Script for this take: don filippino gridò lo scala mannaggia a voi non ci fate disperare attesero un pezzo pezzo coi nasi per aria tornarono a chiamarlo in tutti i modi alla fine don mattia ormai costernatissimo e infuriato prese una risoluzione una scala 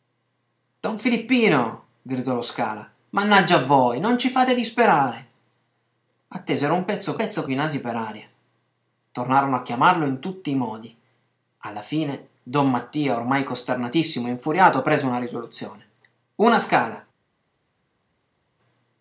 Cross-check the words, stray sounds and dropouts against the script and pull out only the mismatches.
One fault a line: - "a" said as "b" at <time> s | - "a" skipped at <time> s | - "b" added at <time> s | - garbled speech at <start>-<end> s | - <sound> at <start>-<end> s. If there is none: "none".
none